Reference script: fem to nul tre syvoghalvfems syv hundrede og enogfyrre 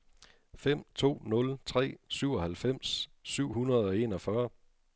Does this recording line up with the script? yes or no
yes